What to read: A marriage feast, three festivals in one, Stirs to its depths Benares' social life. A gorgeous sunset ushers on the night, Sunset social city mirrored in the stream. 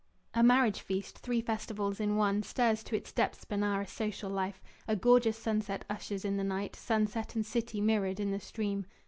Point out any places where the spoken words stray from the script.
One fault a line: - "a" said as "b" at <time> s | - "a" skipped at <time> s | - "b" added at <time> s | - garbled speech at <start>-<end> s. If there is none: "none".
- "on" said as "in" at 6.2 s
- "social" said as "and" at 7.3 s